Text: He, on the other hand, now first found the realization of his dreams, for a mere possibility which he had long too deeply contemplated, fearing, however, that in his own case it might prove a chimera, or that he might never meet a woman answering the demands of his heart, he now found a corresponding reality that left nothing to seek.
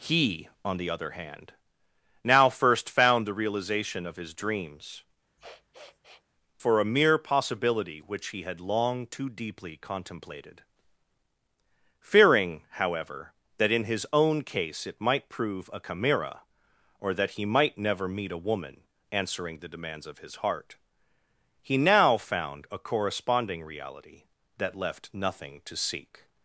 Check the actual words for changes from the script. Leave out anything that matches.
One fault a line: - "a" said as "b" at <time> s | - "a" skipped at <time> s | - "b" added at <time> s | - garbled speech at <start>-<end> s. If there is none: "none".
none